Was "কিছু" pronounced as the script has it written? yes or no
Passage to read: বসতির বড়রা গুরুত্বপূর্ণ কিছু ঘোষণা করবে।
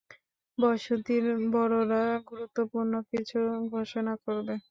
yes